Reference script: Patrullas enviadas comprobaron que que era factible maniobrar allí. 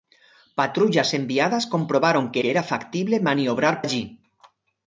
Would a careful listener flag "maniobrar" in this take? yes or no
no